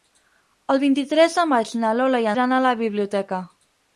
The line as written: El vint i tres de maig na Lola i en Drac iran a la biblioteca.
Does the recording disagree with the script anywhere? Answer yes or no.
yes